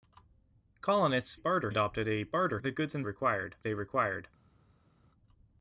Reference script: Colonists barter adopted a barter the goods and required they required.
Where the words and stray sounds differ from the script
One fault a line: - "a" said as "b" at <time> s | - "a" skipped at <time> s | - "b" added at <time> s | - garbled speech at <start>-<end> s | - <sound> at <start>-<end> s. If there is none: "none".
none